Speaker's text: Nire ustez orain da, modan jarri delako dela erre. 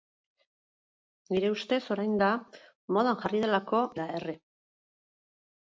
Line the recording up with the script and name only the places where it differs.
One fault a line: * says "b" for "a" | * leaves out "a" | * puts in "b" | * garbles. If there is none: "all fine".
all fine